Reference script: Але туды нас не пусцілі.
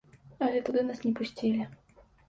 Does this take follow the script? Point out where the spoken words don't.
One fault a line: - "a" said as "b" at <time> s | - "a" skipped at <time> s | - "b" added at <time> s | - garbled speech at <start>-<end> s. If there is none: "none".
none